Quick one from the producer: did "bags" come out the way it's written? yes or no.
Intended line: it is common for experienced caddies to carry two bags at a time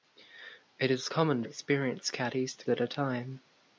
no